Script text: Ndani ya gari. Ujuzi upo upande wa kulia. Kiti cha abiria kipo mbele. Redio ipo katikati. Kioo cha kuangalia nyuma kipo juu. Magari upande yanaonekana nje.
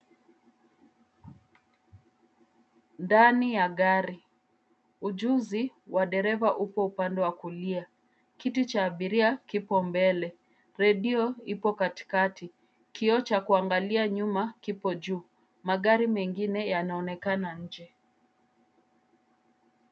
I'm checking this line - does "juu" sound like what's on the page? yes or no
yes